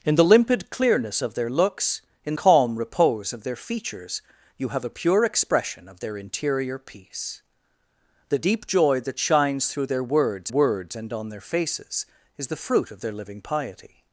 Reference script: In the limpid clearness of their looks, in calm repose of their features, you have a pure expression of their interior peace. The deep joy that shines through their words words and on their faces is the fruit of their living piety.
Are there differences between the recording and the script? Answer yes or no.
no